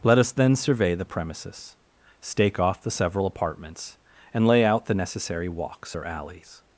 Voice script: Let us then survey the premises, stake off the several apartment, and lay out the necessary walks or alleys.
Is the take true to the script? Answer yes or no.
no